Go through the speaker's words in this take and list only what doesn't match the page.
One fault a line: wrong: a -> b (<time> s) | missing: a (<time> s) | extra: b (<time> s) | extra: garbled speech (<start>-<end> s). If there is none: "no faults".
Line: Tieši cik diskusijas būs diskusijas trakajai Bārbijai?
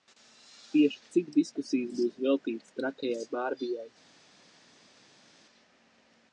wrong: diskusijas -> veltītas (2.2 s)